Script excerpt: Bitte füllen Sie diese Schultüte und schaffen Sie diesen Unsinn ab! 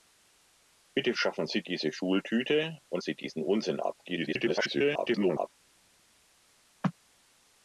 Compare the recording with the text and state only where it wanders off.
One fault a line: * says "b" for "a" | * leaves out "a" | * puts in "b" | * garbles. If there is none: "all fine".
* says "schaffen" for "füllen"
* leaves out "schaffen"
* garbles